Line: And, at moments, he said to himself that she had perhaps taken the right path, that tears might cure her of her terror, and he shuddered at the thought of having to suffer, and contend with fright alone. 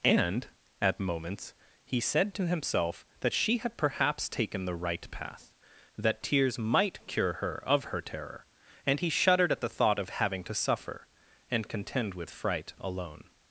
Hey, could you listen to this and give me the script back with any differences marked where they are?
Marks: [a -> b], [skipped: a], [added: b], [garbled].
And, at moments, he said to himself that she had perhaps taken the right path, that tears might cure her of her terror, and he shuddered at the thought of having to suffer, and contend with fright alone.